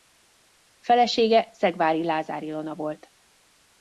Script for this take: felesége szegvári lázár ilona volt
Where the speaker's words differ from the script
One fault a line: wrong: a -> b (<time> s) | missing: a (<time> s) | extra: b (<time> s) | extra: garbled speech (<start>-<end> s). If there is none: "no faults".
no faults